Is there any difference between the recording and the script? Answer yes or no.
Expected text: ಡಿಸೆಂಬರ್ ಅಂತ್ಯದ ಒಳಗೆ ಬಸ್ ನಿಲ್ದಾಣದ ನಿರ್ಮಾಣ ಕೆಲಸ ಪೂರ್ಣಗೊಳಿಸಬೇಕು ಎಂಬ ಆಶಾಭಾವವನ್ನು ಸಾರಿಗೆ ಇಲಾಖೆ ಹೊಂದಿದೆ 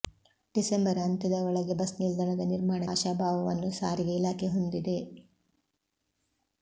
yes